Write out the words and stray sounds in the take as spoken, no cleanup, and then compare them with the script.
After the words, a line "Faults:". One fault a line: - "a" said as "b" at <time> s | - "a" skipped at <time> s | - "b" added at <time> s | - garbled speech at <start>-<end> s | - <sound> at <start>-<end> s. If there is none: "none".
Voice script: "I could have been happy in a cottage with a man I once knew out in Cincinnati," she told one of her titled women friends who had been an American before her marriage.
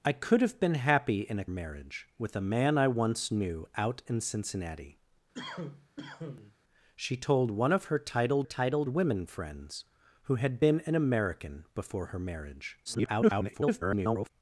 "I could have been happy in a marriage with a man I once knew out in Cincinnati," she told one of her titled titled women friends who had been an American before her marriage. [garbled]
Faults:
- "cottage" said as "marriage" at 1.5 s
- cough at 5.3-6.6 s
- "titled" added at 8.4 s
- garbled speech at 12.9-14.3 s